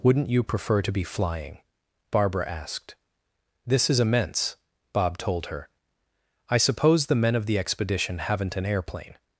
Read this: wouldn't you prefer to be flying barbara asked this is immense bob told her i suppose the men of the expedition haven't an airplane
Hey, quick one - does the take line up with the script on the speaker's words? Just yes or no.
yes